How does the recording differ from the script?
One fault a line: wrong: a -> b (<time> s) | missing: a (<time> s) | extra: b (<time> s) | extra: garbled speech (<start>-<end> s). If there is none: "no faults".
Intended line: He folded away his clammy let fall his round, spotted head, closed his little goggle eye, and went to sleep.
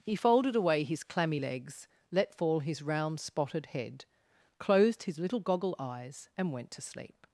extra: legs (1.4 s)
wrong: eye -> eyes (5.8 s)